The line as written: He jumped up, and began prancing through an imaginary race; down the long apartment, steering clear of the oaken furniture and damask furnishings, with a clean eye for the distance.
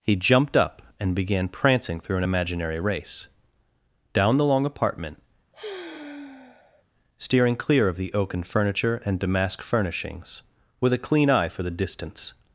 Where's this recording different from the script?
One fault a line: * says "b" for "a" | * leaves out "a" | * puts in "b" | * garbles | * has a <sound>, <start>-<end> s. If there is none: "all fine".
* has a sigh, 5.5-6.8 s